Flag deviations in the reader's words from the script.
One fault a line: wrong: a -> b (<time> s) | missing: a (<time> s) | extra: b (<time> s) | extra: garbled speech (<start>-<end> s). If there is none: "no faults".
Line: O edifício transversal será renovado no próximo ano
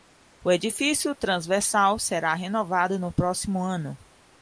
no faults